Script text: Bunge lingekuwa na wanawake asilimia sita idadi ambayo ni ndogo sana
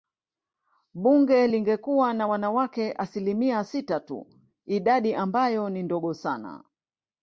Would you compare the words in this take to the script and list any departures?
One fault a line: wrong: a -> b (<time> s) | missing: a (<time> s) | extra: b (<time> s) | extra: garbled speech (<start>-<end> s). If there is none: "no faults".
extra: tu (4.0 s)